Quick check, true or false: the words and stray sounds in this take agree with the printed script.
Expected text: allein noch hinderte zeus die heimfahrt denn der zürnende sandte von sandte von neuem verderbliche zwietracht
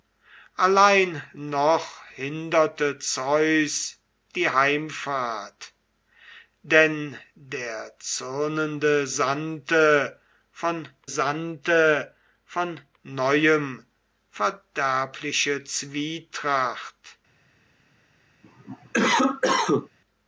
false